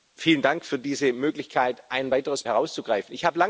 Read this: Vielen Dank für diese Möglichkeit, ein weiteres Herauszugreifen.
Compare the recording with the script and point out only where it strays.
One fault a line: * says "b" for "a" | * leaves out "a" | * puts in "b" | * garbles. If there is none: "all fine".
all fine